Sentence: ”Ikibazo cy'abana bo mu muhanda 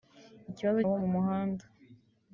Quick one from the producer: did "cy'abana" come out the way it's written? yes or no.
no